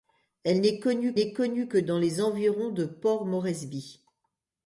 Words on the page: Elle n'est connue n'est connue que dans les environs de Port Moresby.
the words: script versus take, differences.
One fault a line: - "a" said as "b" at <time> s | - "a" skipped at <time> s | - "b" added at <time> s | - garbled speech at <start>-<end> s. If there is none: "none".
none